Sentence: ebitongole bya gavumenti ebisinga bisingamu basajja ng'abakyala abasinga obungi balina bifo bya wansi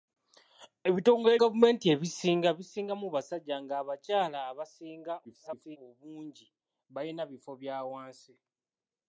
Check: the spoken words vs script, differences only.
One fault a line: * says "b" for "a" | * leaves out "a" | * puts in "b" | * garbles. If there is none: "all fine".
* leaves out "bya"
* garbles